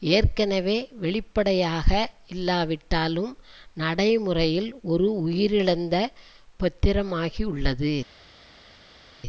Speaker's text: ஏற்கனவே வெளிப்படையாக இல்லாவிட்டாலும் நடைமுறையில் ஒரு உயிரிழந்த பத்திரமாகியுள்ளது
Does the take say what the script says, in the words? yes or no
yes